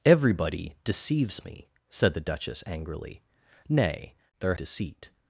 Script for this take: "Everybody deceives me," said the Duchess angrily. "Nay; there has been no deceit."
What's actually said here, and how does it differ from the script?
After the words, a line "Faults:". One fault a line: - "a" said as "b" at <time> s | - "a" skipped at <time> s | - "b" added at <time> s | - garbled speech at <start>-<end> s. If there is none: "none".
"Everybody deceives me," said the Duchess angrily. "Nay; there deceit."
Faults:
- "has been no" skipped at 4.5 s